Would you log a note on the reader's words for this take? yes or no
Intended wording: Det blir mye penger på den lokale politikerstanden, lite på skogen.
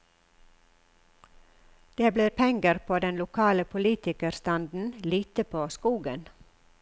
yes